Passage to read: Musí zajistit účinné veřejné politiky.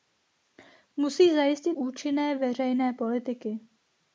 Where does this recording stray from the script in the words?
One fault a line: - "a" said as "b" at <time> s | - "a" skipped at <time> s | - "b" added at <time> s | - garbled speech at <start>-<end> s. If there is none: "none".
none